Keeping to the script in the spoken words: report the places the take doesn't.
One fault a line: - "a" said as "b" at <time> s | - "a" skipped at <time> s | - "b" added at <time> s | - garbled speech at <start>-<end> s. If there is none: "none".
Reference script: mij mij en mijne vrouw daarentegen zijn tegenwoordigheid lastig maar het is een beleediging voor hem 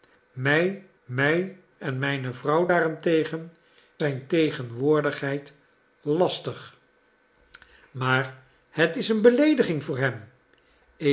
none